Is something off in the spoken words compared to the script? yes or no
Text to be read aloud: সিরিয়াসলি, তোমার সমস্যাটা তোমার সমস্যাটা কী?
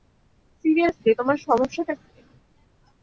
yes